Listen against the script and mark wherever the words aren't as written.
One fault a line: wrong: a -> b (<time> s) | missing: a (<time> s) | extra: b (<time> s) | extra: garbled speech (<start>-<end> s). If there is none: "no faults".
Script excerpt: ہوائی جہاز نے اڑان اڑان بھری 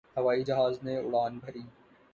missing: اڑان (1.3 s)